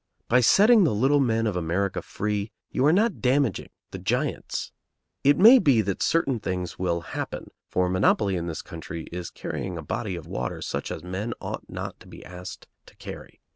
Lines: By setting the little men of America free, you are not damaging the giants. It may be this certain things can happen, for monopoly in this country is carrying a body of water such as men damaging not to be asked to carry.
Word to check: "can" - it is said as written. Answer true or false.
false